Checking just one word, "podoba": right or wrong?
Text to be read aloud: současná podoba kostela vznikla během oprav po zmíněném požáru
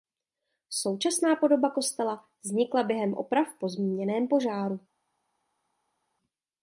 right